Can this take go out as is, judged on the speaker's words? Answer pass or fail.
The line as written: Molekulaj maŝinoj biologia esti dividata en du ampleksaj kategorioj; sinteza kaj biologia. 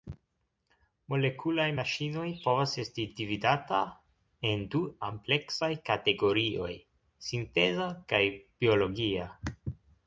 fail